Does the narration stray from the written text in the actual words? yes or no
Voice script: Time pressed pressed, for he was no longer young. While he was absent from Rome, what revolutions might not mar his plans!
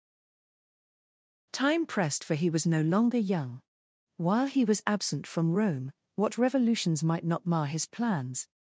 yes